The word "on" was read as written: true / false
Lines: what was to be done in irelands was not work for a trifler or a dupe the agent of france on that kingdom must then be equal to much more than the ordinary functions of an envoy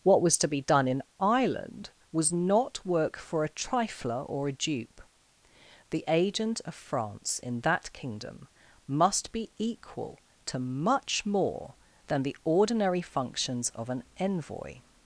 false